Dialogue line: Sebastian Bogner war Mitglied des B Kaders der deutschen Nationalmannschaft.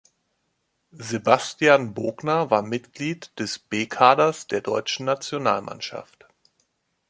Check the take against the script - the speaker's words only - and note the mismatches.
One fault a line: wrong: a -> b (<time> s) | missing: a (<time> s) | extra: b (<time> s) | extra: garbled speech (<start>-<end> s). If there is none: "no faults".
no faults